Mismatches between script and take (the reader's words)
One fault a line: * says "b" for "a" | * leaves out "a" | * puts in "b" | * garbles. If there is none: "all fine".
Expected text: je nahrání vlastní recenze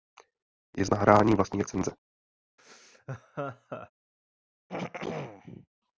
all fine